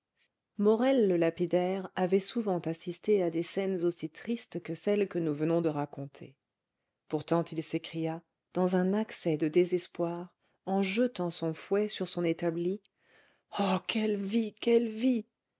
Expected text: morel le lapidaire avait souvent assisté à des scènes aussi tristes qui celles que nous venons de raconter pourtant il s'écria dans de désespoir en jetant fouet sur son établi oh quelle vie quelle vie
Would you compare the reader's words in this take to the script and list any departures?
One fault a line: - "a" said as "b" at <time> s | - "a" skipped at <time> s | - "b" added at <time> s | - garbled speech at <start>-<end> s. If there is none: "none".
- "qui" said as "que" at 4.6 s
- "un accès" added at 8.8 s
- "son" added at 11.3 s